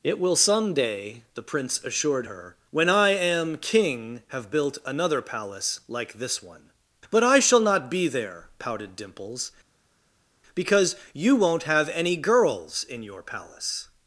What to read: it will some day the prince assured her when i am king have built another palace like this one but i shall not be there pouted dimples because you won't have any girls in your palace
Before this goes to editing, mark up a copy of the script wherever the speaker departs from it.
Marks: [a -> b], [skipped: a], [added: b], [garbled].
it will some day the prince assured her when i am king have built another palace like this one but i shall not be there pouted dimples because you won't have any girls in your palace